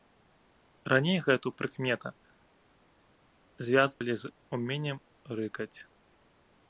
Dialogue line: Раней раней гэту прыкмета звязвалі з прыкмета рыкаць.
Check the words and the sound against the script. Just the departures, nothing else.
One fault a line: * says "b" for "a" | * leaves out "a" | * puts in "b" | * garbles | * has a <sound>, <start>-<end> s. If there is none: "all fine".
* leaves out "раней"
* has a dropout, 3.9-4.0 s
* says "уменнем" for "прыкмета"